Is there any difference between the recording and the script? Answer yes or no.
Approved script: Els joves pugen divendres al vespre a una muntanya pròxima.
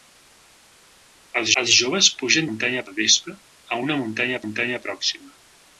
yes